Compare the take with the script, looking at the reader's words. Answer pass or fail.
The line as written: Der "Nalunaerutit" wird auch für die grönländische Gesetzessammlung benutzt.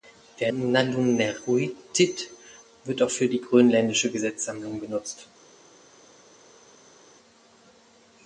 pass